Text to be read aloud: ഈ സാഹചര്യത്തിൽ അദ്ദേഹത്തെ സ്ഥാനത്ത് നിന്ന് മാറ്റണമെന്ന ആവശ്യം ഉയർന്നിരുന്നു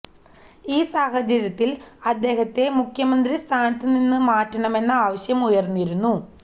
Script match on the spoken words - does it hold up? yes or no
no